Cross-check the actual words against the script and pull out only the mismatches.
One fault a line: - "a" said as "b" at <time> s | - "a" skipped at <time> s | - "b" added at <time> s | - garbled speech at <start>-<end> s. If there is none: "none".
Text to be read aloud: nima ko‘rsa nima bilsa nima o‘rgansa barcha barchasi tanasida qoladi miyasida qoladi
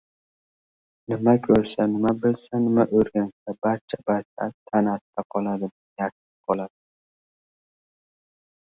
none